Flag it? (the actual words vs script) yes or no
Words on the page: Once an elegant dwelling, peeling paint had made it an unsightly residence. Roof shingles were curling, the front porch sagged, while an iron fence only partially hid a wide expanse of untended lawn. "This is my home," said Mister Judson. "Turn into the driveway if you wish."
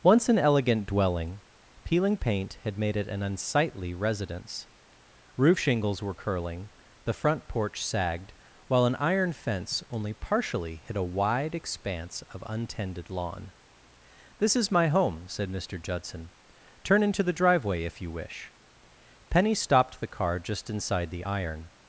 yes